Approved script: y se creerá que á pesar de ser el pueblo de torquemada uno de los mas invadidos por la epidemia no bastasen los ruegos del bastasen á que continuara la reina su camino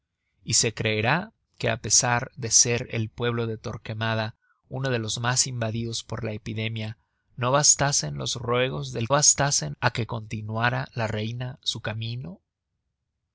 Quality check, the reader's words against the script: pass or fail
pass